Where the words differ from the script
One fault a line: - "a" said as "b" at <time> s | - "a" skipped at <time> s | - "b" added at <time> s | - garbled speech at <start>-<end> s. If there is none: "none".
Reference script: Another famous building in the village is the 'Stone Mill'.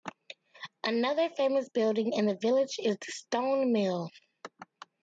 none